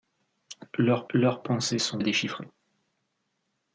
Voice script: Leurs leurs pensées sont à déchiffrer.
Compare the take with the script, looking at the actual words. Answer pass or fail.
pass